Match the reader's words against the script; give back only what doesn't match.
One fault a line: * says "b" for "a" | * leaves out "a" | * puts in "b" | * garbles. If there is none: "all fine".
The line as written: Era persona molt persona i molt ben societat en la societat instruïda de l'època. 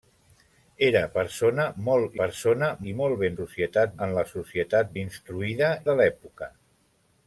all fine